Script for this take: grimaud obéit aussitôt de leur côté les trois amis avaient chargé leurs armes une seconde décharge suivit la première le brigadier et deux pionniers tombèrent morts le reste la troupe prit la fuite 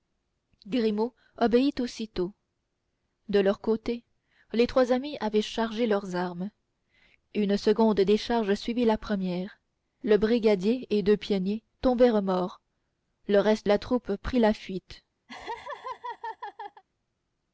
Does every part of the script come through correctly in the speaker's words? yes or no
yes